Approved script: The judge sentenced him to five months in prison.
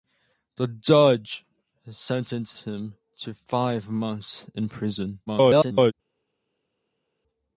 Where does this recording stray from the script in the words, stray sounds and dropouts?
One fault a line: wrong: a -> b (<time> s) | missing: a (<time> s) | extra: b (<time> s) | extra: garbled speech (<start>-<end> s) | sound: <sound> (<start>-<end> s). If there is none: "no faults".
extra: garbled speech (5.3-5.9 s)